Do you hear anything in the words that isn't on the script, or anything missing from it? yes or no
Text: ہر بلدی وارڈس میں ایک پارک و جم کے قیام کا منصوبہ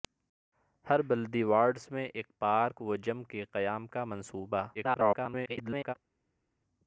yes